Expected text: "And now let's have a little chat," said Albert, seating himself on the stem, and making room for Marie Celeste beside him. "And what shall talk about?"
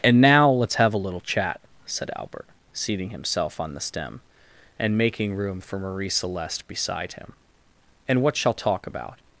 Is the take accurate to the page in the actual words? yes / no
yes